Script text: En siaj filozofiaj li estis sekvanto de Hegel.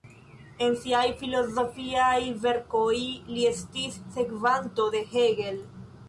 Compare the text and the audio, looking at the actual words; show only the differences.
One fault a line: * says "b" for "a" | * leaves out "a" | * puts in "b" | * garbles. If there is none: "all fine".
* puts in "verkoj"